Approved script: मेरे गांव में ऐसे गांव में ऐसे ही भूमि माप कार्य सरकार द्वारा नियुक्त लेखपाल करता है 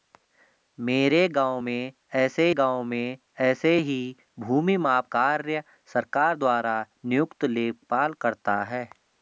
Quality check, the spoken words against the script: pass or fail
pass